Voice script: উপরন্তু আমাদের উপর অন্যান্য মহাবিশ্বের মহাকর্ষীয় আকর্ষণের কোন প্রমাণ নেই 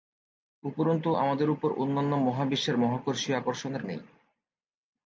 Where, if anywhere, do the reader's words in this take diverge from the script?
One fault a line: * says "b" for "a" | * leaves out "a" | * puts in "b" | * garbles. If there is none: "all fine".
* leaves out "কোন প্রমাণ"